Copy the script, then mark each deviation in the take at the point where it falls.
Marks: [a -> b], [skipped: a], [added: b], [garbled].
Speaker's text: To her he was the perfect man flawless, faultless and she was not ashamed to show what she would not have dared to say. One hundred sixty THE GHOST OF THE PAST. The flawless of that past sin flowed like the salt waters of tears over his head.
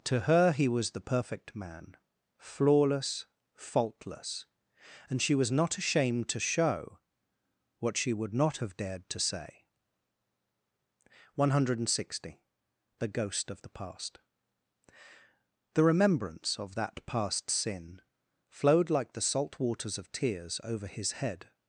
To her he was the perfect man flawless, faultless and she was not ashamed to show what she would not have dared to say. One hundred sixty THE GHOST OF THE PAST. The [flawless -> remembrance] of that past sin flowed like the salt waters of tears over his head.